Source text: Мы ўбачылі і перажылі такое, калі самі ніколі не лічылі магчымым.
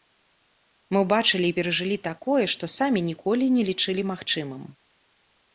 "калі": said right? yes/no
no